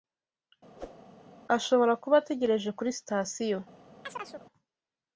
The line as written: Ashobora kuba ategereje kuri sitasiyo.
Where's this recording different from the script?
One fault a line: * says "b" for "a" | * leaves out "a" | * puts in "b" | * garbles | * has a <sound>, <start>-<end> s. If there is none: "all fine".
* has a whoosh, 0.8-1.0 s
* has a chirp, 4.0-4.5 s